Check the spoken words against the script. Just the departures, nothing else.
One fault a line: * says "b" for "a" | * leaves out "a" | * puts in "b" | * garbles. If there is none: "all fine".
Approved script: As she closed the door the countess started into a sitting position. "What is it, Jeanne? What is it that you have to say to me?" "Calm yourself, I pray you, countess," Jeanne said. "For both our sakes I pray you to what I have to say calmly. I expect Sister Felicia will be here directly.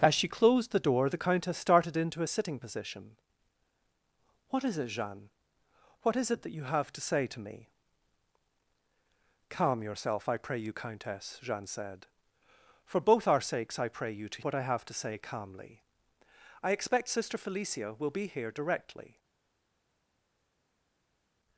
all fine